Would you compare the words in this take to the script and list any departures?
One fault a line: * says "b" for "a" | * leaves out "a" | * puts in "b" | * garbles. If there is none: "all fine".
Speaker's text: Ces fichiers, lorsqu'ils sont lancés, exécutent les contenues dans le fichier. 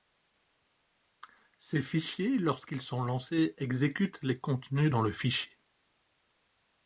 all fine